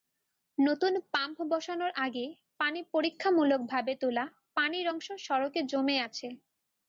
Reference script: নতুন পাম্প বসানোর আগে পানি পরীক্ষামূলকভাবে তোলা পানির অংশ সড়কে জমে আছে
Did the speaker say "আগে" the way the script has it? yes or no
yes